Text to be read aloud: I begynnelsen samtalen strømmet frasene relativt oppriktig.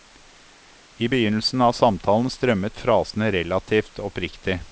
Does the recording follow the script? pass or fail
fail